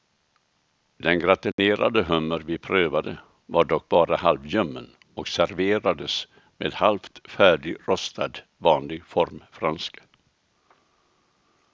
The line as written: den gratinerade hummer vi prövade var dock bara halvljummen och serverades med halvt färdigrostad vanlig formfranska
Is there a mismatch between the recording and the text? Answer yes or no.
no